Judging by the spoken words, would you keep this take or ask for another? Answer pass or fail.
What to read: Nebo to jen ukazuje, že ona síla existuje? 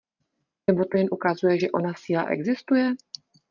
pass